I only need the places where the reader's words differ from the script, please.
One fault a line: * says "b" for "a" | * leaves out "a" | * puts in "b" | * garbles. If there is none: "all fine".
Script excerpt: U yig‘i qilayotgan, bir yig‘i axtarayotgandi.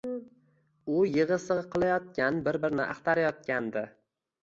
* puts in "sig‘i"
* says "birini" for "yig‘i"